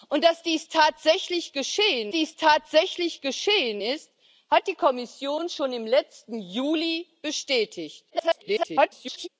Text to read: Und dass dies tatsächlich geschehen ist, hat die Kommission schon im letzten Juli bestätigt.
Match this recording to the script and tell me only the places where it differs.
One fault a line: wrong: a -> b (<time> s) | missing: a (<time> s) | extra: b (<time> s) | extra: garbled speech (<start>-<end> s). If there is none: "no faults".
extra: dies tatsächlich geschehen (2.1 s)
extra: garbled speech (8.1-9.3 s)